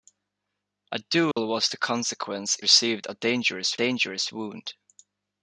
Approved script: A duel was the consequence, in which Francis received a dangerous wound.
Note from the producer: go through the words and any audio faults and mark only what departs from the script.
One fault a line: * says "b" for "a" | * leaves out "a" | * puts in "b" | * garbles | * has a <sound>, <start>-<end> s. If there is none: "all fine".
* has a dropout, 1.3-1.4 s
* leaves out "in which Francis"
* puts in "dangerous"